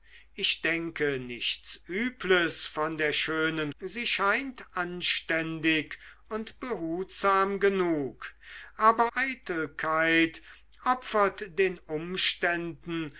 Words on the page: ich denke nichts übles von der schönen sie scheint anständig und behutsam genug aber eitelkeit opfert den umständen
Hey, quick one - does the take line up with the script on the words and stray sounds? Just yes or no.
yes